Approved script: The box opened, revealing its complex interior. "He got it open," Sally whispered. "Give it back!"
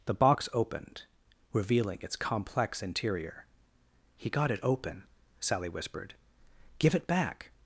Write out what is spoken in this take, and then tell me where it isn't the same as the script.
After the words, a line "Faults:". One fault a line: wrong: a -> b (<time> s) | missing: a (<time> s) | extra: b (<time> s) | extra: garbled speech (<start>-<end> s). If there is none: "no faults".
The box opened, revealing its complex interior. "He got it open," Sally whispered. "Give it back!"
Faults:
no faults